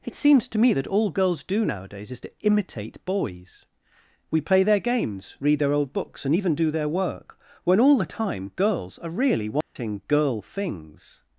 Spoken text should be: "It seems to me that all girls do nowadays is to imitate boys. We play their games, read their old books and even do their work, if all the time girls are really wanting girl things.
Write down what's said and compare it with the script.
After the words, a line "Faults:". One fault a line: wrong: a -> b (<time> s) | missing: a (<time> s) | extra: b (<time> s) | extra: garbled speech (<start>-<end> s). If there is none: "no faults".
"It seems to me that all girls do nowadays is to imitate boys. We play their games, read their old books and even do their work, when all the time girls are really wanting girl things.
Faults:
wrong: if -> when (7.6 s)